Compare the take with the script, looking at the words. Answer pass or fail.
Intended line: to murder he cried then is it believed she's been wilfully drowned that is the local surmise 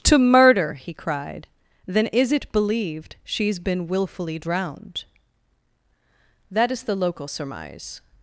pass